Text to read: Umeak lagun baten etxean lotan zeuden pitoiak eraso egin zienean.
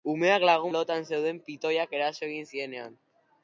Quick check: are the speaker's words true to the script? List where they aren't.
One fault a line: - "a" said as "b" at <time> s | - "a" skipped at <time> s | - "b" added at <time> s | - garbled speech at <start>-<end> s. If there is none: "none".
- "baten etxean" skipped at 0.7 s